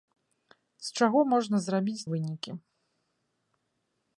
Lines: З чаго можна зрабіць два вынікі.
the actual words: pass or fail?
fail